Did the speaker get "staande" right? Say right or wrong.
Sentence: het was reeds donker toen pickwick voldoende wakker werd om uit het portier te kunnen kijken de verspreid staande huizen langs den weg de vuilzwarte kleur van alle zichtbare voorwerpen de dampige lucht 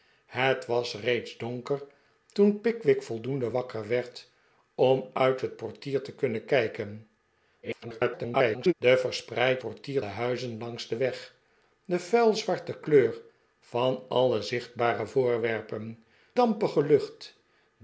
wrong